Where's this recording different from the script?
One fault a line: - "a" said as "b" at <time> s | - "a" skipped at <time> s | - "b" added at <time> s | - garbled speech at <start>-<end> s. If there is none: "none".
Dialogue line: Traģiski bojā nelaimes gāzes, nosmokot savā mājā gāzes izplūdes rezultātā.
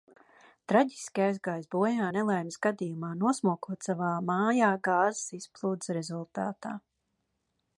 - "aizgājis" added at 1.2 s
- "gāzes" said as "gadījumā" at 2.7 s